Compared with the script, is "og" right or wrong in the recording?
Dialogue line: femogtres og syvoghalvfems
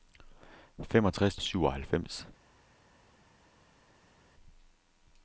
right